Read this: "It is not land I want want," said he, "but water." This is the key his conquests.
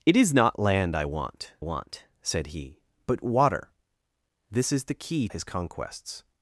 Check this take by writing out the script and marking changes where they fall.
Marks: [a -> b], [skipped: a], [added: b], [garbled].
"It is not land I want want," said he, "but water." This is the key his conquests.